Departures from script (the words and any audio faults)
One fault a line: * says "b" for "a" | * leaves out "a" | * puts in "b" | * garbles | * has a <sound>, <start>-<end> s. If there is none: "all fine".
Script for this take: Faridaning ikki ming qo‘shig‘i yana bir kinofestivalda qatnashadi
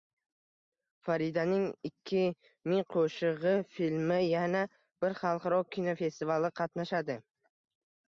* puts in "filmi"
* puts in "xalqaro"